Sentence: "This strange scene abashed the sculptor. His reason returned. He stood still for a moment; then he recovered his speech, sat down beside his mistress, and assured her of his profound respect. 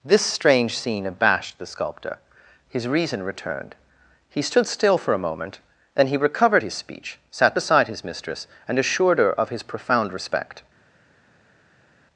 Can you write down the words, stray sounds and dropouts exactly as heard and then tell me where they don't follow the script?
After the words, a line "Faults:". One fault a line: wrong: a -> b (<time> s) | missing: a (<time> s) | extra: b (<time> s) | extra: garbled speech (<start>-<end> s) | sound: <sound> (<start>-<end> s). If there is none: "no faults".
"This strange scene abashed the sculptor. His reason returned. He stood still for a moment; then he recovered his speech, sat beside his mistress, and assured her of his profound respect.
Faults:
missing: down (7.6 s)